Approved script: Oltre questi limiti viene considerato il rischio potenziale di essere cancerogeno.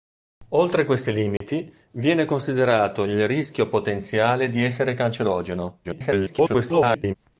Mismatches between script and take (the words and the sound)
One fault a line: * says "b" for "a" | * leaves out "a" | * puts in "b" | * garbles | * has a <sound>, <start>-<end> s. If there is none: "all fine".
* has a dropout, 1.4-1.4 s
* garbles